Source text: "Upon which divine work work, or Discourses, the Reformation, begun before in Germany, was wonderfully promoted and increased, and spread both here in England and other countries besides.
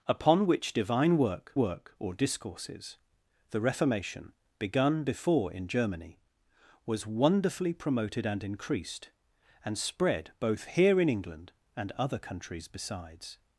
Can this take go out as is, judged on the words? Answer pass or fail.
pass